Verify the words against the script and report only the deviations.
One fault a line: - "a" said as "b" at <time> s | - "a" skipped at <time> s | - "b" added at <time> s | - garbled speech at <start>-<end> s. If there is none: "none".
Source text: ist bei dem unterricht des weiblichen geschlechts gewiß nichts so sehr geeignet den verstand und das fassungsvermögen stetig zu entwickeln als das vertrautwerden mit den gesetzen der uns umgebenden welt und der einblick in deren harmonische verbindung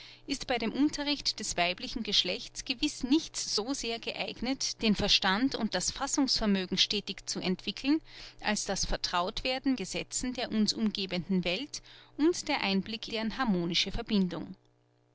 - "mit den" skipped at 9.7 s
- "in" skipped at 13.1 s